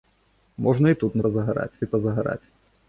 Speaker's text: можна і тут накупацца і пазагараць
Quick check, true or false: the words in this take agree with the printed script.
false